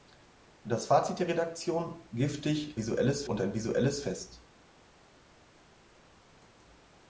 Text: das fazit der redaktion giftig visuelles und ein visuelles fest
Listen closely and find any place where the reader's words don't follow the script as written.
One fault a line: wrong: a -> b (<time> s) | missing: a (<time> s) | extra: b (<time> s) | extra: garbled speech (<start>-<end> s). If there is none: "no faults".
no faults